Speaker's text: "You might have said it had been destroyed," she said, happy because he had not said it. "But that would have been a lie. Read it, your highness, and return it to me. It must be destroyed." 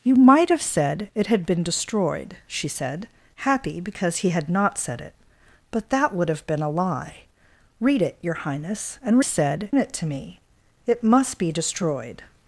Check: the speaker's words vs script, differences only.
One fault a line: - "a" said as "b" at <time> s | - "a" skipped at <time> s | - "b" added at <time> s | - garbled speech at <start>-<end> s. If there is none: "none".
- "return" said as "said" at 9.2 s